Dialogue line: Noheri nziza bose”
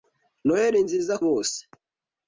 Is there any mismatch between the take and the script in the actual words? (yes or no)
no